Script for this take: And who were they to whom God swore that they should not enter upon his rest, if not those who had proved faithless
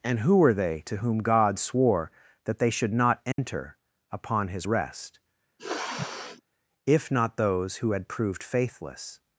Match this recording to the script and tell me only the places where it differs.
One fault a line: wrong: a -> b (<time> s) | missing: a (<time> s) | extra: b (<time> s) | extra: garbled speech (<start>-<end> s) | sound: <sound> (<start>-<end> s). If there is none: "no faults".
sound: dropout (3.3-3.4 s)
sound: sniff (5.6-6.4 s)